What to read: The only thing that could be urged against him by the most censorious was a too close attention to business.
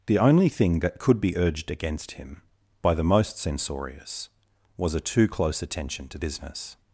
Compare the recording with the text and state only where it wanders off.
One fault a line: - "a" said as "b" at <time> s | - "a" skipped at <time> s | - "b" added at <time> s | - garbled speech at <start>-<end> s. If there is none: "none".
none